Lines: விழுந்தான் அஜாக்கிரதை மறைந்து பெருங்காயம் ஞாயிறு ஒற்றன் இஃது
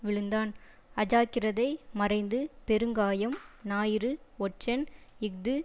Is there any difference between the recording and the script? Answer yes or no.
no